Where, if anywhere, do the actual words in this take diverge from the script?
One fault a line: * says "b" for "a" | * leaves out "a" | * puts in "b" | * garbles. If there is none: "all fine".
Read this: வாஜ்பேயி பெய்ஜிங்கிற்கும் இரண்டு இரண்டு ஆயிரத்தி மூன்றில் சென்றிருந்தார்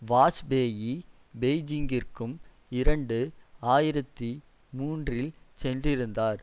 * leaves out "இரண்டு"